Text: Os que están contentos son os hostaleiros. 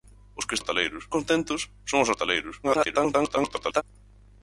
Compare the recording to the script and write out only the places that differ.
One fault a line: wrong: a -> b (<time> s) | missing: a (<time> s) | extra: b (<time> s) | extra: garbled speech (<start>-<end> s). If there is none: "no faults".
wrong: están -> hostaleiros (0.6 s)
extra: garbled speech (2.6-3.8 s)